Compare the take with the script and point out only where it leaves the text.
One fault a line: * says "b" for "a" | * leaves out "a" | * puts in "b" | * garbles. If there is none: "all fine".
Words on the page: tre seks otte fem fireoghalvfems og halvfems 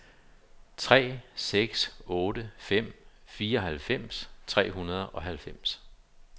* puts in "tre hundrede"